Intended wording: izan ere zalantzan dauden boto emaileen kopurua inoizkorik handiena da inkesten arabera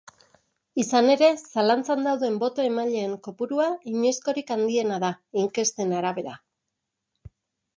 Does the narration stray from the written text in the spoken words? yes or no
no